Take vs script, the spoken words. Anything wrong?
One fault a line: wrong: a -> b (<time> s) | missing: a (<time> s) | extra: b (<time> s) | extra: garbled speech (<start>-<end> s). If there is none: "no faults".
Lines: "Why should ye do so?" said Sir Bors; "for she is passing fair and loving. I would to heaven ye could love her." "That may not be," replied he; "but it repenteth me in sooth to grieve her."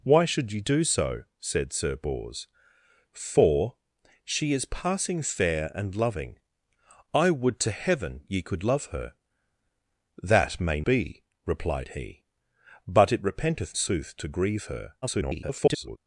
missing: not (10.8 s)
missing: me in (13.7 s)
extra: garbled speech (15.0-16.0 s)